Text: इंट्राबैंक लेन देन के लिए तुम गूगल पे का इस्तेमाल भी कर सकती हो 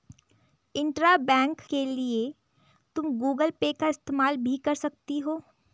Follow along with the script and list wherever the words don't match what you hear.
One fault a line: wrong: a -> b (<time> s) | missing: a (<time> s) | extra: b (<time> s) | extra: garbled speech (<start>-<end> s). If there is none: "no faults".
missing: लेन देन (1.6 s)